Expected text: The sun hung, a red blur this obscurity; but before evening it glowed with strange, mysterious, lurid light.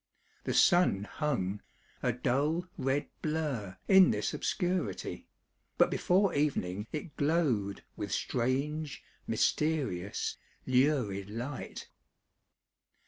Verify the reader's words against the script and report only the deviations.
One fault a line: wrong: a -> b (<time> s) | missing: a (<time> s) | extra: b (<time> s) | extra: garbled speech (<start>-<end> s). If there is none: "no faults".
extra: dull (2.1 s)
extra: in (3.9 s)